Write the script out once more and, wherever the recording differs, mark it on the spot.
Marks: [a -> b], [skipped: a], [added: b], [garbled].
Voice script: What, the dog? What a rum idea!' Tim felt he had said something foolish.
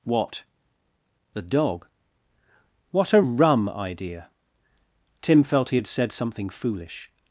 What, the dog? What a rum idea!' Tim felt he had said something foolish.